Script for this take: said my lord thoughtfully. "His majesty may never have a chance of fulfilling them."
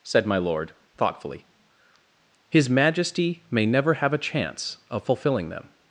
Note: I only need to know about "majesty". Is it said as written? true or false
true